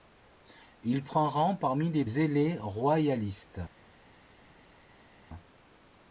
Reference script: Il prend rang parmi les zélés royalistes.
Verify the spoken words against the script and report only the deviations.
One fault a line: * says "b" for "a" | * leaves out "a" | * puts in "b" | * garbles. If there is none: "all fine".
all fine